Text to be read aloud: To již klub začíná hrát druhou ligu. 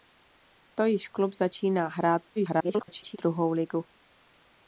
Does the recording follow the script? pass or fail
fail